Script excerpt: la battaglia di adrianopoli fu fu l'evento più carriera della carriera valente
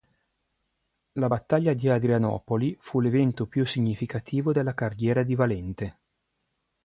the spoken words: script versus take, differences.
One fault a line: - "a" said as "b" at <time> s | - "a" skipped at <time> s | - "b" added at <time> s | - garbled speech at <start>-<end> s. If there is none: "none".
- "fu" skipped at 3.0 s
- "carriera" said as "significativo" at 3.7 s
- "di" added at 5.2 s